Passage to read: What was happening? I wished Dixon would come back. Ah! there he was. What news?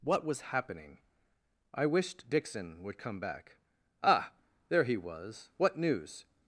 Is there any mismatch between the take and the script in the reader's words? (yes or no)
no